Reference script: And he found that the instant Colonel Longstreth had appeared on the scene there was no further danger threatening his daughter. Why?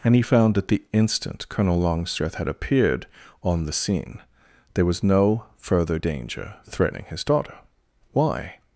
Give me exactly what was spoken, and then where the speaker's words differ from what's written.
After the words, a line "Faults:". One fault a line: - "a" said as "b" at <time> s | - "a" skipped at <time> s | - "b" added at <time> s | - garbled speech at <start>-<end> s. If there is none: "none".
And he found that the instant Colonel Longstreth had appeared on the scene there was no further danger threatening his daughter. Why?
Faults:
none